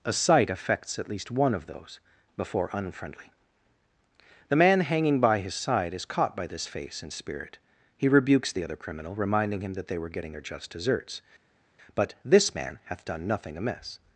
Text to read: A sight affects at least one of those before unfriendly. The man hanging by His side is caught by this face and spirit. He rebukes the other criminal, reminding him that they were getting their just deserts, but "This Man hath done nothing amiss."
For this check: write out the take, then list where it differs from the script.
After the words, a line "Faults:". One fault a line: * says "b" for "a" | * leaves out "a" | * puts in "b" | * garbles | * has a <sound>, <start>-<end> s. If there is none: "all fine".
A sight affects at least one of those before unfriendly. The man hanging by His side is caught by this face and spirit. He rebukes the other criminal, reminding him that they were getting their just deserts, but "This Man hath done nothing amiss."
Faults:
all fine